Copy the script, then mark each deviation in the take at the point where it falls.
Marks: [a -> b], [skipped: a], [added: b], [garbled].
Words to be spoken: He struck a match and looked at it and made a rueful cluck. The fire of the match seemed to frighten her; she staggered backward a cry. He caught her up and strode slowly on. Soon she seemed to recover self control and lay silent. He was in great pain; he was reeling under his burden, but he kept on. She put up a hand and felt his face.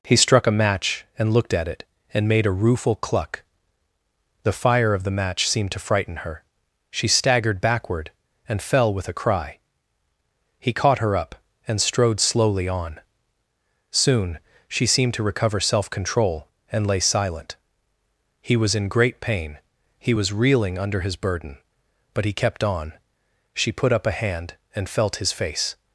He struck a match and looked at it and made a rueful cluck. The fire of the match seemed to frighten her; she staggered backward [added: and fell with] a cry. He caught her up and strode slowly on. Soon she seemed to recover self control and lay silent. He was in great pain; he was reeling under his burden, but he kept on. She put up a hand and felt his face.